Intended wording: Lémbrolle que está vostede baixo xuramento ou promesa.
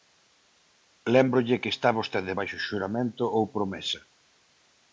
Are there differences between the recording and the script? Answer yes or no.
no